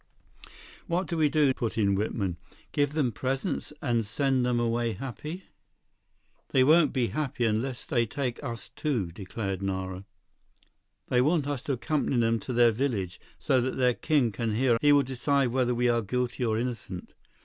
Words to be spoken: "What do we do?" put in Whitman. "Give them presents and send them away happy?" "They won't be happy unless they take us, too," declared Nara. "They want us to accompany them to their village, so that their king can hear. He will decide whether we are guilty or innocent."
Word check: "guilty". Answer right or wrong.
right